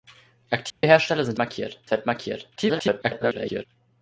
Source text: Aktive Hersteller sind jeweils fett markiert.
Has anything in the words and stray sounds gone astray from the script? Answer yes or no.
yes